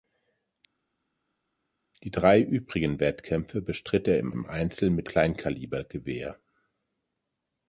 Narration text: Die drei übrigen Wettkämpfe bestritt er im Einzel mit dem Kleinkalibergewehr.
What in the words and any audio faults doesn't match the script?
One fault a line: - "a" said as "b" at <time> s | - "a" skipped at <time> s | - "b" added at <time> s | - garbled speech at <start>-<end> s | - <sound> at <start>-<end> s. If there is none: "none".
- "im" added at 4.3 s
- "dem" skipped at 5.1 s